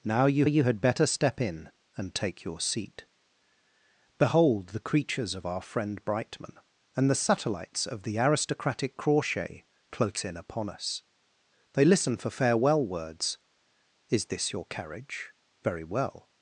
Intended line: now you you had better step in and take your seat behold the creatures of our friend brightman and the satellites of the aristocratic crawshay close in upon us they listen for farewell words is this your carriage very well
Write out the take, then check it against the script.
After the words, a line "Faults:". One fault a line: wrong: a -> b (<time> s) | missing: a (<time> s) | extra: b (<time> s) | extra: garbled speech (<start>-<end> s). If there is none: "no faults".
now you you had better step in and take your seat behold the creatures of our friend brightman and the satellites of the aristocratic crawshay close in upon us they listen for farewell words is this your carriage very well
Faults:
no faults